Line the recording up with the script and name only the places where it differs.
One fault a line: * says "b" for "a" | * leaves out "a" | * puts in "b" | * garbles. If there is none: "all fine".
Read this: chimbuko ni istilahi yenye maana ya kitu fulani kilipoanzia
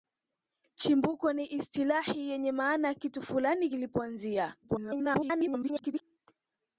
* garbles